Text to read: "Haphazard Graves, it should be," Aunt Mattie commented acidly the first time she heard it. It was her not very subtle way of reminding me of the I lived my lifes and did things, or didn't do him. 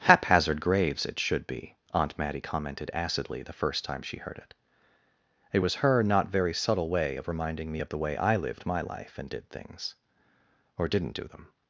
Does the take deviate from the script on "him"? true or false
true